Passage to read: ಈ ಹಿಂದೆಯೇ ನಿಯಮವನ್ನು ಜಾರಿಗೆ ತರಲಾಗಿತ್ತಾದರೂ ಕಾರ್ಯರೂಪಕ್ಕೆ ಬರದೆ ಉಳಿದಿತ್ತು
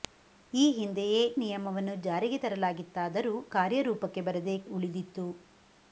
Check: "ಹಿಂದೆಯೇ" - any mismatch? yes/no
no